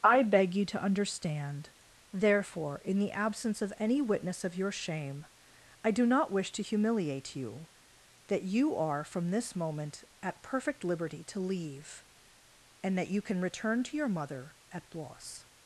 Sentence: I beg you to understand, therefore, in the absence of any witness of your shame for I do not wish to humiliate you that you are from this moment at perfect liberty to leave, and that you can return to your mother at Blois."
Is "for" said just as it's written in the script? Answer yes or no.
no